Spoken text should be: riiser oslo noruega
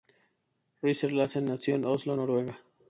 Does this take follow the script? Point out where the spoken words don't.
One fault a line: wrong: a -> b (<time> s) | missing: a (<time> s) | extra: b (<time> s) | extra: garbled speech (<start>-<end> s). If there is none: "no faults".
extra: larsen nació en (1.1 s)